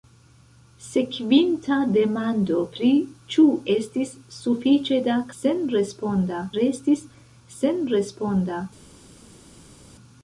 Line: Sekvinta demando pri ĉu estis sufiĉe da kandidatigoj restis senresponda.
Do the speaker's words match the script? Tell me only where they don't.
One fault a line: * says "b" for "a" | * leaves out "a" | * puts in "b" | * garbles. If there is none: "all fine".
* says "senresponda" for "kandidatigoj"